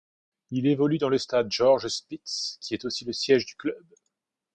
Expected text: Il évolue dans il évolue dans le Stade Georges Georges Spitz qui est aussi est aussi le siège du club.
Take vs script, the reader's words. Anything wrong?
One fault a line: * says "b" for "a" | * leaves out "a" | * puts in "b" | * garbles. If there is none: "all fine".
* leaves out "il évolue dans"
* leaves out "Georges"
* leaves out "est aussi"